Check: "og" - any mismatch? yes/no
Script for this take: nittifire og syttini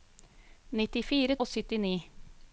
no